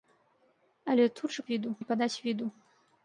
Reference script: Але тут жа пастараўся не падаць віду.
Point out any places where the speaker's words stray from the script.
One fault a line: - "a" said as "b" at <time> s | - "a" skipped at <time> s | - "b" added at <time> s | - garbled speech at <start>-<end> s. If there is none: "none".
- "пастараўся" said as "віду" at 1.5 s